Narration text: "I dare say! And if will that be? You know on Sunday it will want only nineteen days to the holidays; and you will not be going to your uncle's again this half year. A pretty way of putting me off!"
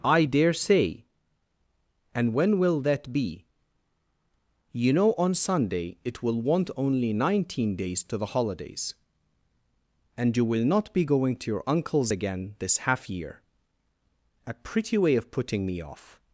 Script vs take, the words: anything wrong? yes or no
yes